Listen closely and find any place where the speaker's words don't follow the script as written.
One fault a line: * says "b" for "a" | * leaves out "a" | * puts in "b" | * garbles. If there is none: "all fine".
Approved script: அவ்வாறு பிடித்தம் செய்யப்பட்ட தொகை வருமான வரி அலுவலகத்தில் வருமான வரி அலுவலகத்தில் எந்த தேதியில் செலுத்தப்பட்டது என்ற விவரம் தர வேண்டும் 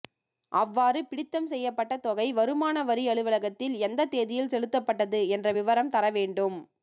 * leaves out "வருமான வரி அலுவலகத்தில்"